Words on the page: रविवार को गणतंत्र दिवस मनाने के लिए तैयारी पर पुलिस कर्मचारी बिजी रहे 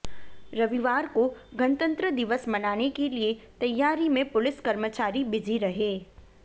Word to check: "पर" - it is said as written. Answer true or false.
false